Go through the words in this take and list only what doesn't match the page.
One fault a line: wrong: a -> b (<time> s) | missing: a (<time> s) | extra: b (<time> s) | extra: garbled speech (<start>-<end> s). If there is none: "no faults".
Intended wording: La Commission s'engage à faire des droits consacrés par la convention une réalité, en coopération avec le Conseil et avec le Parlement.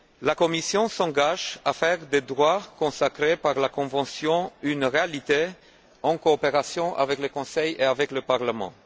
no faults